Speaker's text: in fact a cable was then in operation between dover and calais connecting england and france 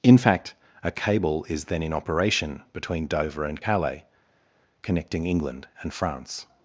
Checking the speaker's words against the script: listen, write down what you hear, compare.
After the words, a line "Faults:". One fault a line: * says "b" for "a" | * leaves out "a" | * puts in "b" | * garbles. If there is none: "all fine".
in fact a cable is then in operation between dover and calais connecting england and france
Faults:
* says "is" for "was"